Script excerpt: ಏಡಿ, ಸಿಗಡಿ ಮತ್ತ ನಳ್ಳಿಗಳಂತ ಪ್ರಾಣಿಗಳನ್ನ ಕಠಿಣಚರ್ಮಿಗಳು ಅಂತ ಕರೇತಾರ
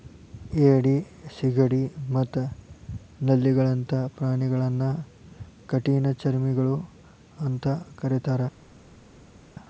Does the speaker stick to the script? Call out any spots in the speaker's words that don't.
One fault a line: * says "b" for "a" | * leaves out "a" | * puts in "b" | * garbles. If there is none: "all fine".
all fine